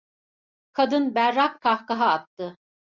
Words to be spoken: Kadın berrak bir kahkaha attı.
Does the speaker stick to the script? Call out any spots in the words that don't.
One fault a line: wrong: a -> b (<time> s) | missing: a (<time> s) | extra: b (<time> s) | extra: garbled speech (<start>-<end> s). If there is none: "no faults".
missing: bir (1.6 s)